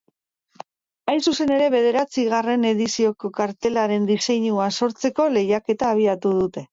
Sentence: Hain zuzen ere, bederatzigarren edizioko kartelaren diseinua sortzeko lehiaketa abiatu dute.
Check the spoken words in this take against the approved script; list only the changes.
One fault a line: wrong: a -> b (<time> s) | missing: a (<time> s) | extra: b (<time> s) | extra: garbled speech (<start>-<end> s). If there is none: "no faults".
no faults